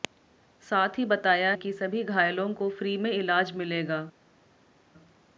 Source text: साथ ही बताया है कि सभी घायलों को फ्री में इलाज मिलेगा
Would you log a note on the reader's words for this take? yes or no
yes